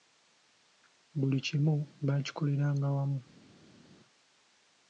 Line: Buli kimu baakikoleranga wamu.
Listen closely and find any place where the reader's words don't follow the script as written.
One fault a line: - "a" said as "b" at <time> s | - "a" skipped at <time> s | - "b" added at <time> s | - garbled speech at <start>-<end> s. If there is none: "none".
none